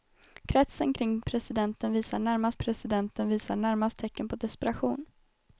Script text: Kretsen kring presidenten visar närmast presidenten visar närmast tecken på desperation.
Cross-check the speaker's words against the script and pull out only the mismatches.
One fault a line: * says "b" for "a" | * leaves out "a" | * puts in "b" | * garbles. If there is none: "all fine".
all fine